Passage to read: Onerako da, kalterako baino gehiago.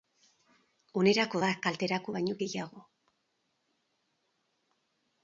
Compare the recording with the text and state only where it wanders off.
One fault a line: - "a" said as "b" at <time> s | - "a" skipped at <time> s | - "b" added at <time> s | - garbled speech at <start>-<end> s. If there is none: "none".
none